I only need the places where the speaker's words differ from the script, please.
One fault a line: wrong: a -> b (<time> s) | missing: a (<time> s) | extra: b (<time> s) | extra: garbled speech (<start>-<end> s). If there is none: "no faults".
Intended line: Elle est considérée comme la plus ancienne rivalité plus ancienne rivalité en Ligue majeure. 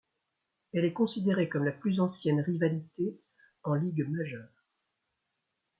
missing: plus ancienne rivalité (3.2 s)